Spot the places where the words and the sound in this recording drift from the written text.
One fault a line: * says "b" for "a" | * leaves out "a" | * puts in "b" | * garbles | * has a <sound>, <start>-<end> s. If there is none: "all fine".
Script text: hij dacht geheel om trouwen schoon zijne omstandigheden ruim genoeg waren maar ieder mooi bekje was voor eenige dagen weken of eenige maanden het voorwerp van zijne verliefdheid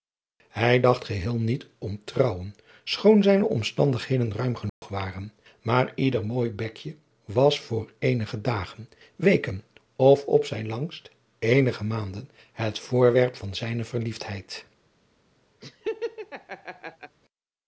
* puts in "niet"
* has a dropout, 4.7-4.8 s
* puts in "op zijn langst"
* has a laugh, 15.6-17.2 s